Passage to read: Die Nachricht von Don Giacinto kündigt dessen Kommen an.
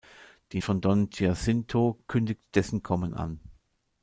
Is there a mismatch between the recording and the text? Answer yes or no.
yes